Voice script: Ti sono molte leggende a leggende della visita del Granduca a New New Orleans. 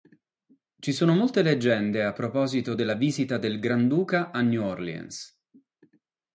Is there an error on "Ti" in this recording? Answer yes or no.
yes